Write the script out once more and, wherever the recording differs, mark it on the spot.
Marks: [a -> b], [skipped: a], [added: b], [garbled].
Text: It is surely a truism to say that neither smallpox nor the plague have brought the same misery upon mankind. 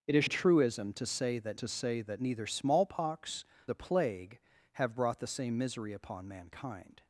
It is [skipped: surely] a truism to say that [added: to say that] neither smallpox [skipped: nor] the plague have brought the same misery upon mankind.